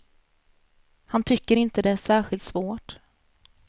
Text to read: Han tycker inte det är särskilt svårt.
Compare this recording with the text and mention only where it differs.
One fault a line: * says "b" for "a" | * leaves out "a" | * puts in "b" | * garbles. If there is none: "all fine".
all fine